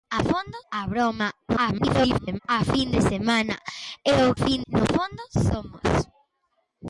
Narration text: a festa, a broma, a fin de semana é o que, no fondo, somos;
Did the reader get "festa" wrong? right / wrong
wrong